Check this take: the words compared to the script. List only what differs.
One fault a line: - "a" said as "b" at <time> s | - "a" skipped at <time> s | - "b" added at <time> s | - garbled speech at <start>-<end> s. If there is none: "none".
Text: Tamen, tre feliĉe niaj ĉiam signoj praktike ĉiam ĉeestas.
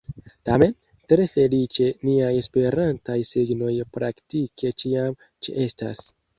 - "ĉiam" said as "esperantaj" at 2.4 s